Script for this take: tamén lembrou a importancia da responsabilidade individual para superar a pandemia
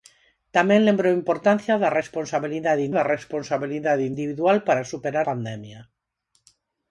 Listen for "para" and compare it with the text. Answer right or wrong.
right